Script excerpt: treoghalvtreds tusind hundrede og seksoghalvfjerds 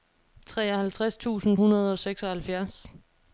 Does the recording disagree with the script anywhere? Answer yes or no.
no